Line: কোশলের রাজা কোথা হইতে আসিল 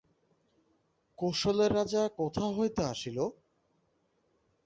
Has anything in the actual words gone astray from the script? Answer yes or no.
no